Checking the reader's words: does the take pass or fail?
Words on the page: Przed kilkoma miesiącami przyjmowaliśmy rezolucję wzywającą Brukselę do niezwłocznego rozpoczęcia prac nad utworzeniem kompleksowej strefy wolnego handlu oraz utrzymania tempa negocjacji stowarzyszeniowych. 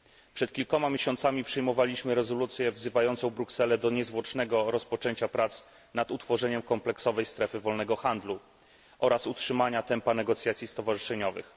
pass